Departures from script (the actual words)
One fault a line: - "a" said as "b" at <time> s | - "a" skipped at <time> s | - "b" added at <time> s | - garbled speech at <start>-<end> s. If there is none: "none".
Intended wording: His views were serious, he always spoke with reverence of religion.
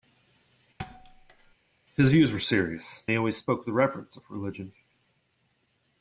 none